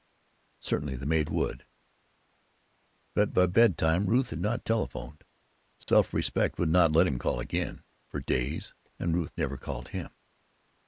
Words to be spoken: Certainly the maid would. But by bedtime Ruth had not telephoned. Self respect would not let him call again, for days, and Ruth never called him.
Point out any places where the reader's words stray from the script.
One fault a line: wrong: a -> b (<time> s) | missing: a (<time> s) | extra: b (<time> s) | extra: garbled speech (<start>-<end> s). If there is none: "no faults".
no faults